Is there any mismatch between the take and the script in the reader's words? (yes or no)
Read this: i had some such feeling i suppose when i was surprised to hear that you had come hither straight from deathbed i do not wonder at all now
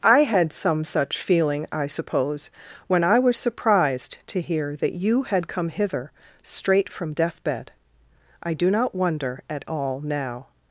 no